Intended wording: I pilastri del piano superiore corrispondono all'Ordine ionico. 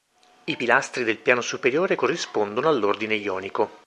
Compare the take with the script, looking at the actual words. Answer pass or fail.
pass